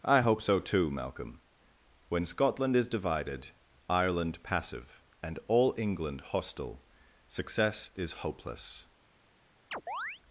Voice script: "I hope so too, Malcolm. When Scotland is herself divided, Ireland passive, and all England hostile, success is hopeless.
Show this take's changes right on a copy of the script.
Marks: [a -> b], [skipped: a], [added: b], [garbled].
"I hope so too, Malcolm. When Scotland is [skipped: herself] divided, Ireland passive, and all England hostile, success is hopeless.